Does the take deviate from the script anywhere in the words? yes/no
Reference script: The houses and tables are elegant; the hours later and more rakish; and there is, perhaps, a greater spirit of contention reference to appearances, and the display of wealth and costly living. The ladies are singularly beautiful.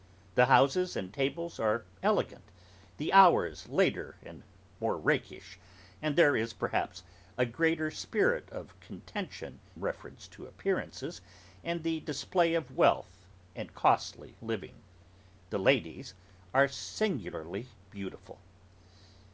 no